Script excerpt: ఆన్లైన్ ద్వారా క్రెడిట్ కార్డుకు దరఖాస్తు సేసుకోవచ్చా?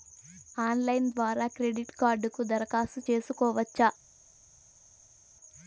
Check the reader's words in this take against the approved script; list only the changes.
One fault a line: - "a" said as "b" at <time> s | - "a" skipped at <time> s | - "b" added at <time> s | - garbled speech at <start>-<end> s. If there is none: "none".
none